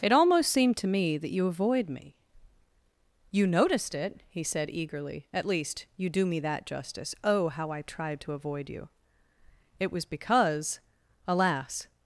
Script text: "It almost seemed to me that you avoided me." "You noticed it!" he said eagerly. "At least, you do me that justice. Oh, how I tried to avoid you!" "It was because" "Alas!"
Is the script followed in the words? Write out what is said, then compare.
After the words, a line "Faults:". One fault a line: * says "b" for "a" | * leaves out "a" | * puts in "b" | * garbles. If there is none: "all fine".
"It almost seemed to me that you avoid me." "You noticed it!" he said eagerly. "At least, you do me that justice. Oh, how I tried to avoid you!" "It was because" "Alas!"
Faults:
* says "avoid" for "avoided"